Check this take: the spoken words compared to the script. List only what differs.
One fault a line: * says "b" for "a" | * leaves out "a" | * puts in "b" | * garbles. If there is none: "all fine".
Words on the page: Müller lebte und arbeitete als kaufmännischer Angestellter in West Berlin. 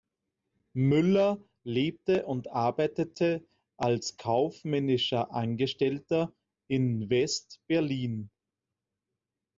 all fine